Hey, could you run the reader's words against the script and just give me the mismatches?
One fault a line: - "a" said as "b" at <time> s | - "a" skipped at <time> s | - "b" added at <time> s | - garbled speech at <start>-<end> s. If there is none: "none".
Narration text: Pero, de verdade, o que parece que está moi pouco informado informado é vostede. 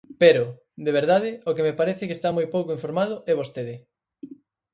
- "me" added at 1.7 s
- "informado" skipped at 3.1 s